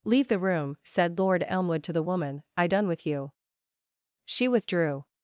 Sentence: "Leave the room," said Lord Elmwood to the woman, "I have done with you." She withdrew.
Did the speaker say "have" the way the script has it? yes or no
no